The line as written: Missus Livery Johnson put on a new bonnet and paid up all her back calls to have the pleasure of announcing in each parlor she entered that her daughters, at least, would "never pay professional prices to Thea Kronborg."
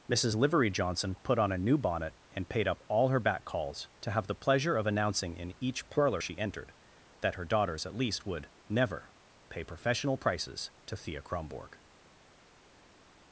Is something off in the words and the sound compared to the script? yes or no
no